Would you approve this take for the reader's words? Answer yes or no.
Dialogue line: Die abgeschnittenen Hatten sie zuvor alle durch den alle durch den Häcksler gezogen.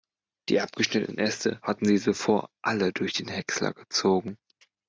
no